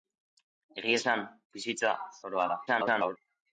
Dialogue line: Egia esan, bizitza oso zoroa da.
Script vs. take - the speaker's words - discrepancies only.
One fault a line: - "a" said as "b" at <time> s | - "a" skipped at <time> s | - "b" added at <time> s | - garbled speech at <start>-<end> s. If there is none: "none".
- "oso" skipped at 1.9 s
- garbled speech at 2.7-3.2 s